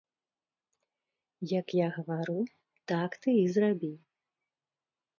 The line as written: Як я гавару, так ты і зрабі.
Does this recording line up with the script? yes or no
yes